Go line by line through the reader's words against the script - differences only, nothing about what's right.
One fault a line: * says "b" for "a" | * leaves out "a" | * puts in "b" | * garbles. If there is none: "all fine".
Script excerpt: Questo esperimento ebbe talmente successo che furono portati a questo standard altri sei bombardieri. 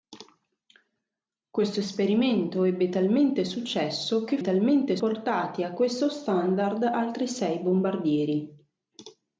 * says "talmente" for "furono"